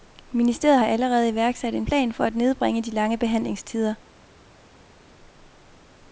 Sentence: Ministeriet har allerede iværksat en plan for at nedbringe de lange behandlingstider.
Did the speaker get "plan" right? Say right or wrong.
right